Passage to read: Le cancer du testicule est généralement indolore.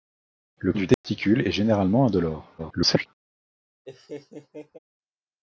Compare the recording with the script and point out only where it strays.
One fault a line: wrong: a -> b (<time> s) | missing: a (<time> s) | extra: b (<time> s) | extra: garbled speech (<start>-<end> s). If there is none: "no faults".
missing: cancer (0.7 s)
extra: garbled speech (2.6-3.1 s)